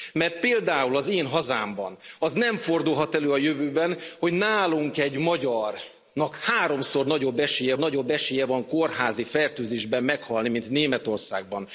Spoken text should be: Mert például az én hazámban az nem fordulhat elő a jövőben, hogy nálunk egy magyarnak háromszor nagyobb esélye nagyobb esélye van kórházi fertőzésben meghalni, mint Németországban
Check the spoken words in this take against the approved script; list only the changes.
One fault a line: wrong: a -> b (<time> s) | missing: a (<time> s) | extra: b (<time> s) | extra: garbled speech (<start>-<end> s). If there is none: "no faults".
no faults